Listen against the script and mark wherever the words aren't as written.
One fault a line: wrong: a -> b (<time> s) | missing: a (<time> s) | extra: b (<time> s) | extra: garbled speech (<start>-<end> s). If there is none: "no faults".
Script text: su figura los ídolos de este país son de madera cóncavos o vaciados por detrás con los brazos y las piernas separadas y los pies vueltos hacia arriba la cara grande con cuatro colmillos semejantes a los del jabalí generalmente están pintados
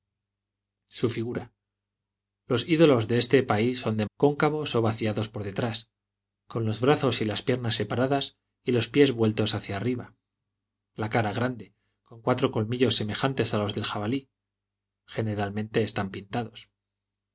missing: madera (4.1 s)